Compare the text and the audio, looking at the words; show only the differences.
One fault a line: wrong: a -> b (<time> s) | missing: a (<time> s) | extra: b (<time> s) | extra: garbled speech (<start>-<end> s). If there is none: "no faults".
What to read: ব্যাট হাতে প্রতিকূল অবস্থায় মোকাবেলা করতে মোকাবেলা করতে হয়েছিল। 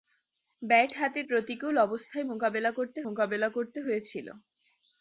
no faults